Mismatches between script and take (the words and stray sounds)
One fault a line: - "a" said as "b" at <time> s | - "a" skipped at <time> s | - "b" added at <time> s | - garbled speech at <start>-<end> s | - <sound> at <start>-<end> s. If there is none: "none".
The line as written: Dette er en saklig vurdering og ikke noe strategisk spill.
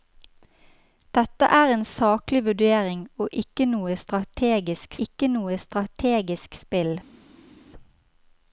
- "ikke noe strategisk" added at 5.1 s